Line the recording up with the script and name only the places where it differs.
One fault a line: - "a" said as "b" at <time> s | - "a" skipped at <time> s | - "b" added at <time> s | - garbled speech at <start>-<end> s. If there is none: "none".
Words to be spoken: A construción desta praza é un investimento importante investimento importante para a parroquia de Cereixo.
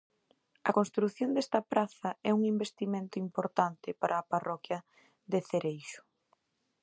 - "investimento importante" skipped at 3.9 s